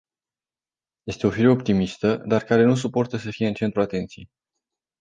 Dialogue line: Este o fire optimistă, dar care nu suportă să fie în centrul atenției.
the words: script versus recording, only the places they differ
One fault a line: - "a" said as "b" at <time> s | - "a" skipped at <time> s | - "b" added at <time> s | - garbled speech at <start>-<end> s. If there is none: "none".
none